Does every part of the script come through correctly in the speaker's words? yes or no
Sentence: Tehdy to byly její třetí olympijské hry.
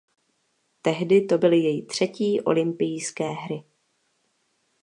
yes